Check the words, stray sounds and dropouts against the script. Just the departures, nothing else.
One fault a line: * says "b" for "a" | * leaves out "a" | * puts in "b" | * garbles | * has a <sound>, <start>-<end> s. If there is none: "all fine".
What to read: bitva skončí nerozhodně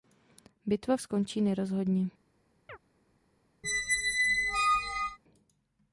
* has a chirp, 2.7-2.8 s
* has a squeak, 3.6-5.2 s